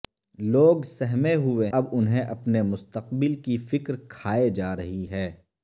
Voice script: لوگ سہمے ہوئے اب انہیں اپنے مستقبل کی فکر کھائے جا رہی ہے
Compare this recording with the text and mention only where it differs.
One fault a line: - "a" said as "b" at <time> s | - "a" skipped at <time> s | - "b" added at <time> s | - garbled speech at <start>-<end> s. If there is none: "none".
none